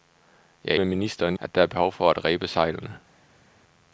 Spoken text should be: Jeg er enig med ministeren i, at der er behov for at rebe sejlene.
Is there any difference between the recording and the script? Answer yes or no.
yes